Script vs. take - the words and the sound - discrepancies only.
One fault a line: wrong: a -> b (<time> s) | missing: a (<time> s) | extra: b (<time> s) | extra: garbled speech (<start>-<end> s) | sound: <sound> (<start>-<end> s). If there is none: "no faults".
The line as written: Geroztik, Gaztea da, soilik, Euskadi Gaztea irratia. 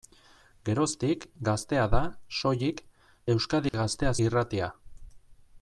sound: dropout (3.7-3.7 s)